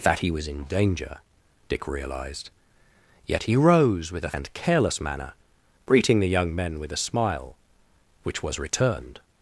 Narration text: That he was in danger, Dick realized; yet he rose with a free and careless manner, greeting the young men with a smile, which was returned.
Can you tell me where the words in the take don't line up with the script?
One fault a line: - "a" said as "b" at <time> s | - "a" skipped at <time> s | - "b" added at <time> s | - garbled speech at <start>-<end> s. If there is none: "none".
- "free" skipped at 4.3 s